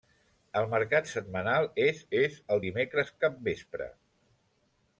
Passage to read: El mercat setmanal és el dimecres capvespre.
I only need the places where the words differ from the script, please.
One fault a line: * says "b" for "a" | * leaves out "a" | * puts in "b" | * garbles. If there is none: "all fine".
* puts in "és"